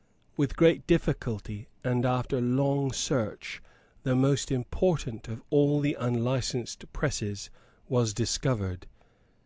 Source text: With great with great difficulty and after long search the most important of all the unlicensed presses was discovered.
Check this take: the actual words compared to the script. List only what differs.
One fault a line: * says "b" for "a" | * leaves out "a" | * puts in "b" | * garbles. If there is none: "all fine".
* leaves out "with great"